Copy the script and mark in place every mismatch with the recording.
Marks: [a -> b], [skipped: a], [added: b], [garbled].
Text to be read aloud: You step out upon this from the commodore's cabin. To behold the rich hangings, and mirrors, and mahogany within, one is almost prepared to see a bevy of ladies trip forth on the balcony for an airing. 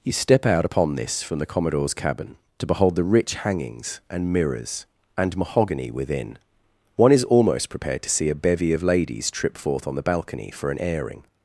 You step out upon this from the commodore's cabin. To behold the rich hangings, and mirrors, and mahogany within, one is almost prepared to see a bevy of ladies trip forth on the balcony for an airing.